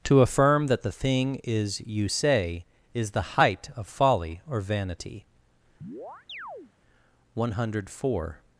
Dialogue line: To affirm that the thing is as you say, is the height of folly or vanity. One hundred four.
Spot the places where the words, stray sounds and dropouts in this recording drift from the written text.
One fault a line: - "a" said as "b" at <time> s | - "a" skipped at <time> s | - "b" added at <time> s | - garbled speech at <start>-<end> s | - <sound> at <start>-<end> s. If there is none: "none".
- "as" skipped at 1.8 s
- chirp at 5.8-6.7 s